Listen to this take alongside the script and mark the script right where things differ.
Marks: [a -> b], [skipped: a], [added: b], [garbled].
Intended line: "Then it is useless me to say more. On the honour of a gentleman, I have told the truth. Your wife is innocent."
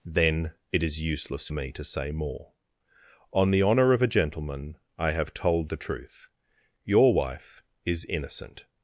"Then it is useless me to say more. On the honour of a gentleman, I have told the truth. Your wife is innocent."